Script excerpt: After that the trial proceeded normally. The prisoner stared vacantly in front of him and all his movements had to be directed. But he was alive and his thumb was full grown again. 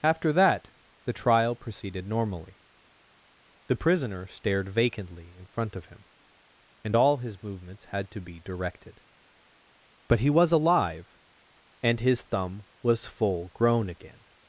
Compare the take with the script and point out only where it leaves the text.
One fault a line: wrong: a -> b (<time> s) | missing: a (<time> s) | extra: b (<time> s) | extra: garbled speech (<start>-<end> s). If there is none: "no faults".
no faults